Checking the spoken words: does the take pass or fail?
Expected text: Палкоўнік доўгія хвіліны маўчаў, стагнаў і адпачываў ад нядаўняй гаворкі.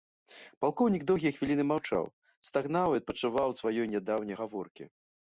fail